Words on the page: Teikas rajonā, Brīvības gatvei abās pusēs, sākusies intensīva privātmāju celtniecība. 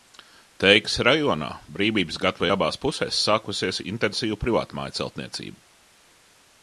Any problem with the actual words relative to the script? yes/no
no